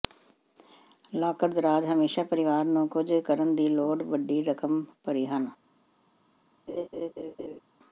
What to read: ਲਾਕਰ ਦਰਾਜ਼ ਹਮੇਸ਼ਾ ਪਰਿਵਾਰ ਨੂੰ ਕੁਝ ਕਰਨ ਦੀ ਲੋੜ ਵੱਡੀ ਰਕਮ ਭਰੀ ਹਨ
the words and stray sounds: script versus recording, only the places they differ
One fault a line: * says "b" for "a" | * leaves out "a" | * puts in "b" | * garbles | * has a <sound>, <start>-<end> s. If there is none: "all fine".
* has a laugh, 6.7-7.6 s